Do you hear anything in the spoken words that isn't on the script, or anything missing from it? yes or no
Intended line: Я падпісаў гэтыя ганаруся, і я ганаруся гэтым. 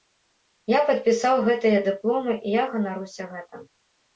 yes